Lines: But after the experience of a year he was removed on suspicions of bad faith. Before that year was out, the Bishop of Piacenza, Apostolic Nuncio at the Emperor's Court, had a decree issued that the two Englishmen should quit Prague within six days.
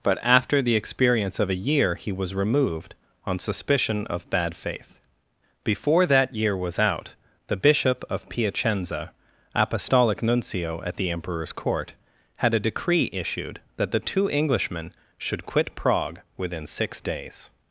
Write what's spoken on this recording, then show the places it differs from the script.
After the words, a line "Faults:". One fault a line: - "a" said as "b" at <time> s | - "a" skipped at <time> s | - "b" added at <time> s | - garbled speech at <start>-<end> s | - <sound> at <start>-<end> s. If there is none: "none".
But after the experience of a year he was removed on suspicion of bad faith. Before that year was out, the Bishop of Piacenza, Apostolic Nuncio at the Emperor's Court, had a decree issued that the two Englishmen should quit Prague within six days.
Faults:
- "suspicions" said as "suspicion" at 3.4 s